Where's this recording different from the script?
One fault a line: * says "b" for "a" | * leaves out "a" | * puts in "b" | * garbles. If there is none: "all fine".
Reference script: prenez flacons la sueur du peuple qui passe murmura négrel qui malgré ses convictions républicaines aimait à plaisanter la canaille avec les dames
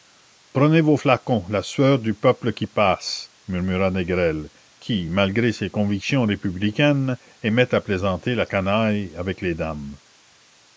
* puts in "vos"